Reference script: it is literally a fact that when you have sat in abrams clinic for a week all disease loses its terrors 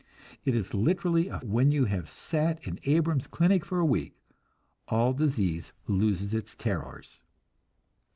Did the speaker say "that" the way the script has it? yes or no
no